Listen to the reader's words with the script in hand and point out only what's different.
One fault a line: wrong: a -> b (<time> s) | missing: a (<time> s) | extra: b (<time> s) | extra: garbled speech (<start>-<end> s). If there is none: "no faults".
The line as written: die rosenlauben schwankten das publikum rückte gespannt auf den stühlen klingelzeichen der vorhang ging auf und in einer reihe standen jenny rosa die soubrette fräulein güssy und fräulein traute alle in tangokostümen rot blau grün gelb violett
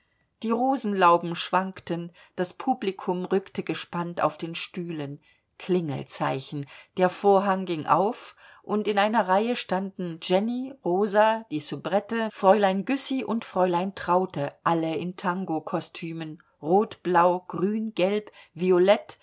no faults